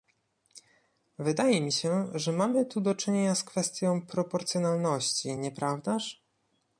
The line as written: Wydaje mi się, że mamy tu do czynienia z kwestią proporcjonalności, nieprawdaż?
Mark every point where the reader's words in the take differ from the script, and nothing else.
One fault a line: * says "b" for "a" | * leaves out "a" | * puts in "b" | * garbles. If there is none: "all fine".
all fine